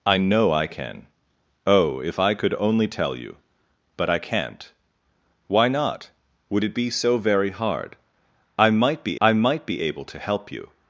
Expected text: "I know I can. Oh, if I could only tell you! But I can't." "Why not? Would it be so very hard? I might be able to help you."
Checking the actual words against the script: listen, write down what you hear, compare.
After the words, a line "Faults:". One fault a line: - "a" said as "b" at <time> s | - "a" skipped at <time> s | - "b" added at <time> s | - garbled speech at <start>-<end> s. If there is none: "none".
"I know I can. Oh, if I could only tell you! But I can't." "Why not? Would it be so very hard? I might be I might be able to help you."
Faults:
- "I might be" added at 9.2 s